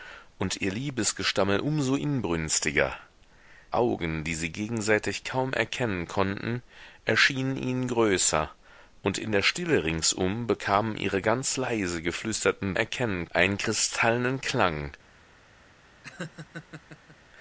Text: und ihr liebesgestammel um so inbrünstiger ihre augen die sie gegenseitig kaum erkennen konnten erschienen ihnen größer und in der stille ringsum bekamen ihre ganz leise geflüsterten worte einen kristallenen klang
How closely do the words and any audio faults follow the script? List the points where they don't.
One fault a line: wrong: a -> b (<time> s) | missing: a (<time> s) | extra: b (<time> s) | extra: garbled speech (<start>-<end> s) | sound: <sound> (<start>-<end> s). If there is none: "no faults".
missing: ihre (2.9 s)
wrong: worte -> erkennen (12.7 s)
sound: laugh (16.0-17.2 s)